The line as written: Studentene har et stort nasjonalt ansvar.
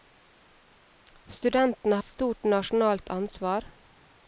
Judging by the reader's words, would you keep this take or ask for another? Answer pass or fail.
fail